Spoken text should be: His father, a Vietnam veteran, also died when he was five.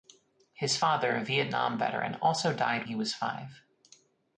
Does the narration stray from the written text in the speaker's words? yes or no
yes